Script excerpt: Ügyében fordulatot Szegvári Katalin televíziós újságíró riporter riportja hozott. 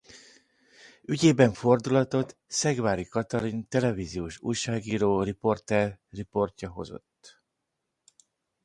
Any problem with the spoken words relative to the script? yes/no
no